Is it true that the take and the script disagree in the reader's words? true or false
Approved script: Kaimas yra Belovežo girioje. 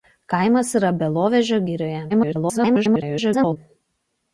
true